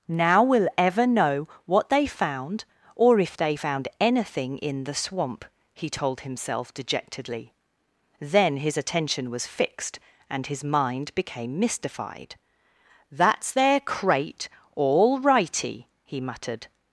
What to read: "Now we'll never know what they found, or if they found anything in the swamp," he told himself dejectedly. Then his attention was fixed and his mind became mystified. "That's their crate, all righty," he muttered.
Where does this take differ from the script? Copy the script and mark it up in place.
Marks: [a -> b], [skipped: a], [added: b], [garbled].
"Now we'll [never -> ever] know what they found, or if they found anything in the swamp," he told himself dejectedly. Then his attention was fixed and his mind became mystified. "That's their crate, all righty," he muttered.